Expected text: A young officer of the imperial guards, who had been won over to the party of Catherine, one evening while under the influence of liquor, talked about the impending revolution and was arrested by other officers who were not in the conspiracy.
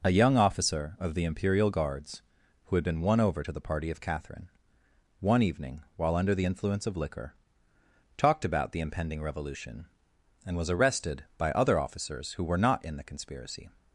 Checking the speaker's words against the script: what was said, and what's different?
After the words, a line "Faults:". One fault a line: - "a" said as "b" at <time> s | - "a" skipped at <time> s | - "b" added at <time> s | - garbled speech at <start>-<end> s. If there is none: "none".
A young officer of the imperial guards, who had been won over to the party of Catherine, one evening while under the influence of liquor, talked about the impending revolution and was arrested by other officers who were not in the conspiracy.
Faults:
none